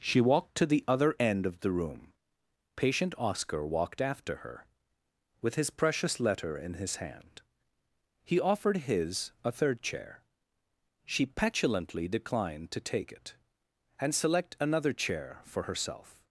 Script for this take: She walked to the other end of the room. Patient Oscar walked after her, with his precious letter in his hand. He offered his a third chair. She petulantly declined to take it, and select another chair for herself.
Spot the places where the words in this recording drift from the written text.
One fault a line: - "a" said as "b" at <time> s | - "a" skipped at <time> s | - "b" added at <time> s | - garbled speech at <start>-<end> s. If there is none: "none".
none